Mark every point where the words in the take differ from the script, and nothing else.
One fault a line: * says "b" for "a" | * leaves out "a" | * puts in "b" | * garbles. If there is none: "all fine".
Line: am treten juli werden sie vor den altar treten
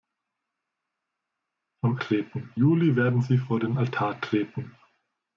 all fine